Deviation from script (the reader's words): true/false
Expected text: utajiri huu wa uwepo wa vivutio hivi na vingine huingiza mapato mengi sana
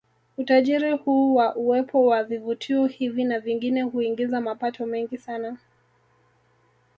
false